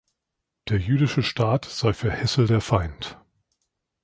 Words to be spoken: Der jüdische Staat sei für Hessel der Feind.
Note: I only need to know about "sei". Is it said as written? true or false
true